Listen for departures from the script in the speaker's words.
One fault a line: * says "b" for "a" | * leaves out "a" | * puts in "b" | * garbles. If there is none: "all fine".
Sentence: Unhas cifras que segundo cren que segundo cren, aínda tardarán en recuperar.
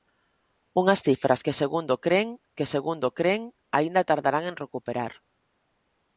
all fine